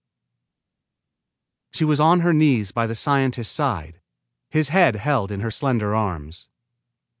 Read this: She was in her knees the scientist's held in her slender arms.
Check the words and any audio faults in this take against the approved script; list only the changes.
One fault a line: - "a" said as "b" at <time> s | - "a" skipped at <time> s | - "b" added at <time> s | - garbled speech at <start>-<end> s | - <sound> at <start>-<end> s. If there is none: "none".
- "in" said as "on" at 2.0 s
- "by" added at 2.7 s
- "side his head" added at 3.5 s